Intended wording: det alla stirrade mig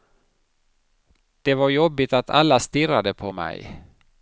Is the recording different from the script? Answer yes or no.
yes